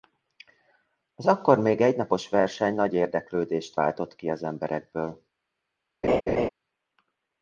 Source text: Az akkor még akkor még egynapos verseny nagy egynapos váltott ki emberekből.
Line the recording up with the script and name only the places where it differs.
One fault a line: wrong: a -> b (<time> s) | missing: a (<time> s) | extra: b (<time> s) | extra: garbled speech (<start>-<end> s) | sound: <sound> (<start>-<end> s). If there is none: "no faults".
missing: akkor még (1.8 s)
wrong: egynapos -> érdeklődést (2.9 s)
extra: az (4.3 s)
sound: laugh (6.0-6.5 s)